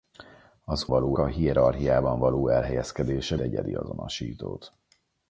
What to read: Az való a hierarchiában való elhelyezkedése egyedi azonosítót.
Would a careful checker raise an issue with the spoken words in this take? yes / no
no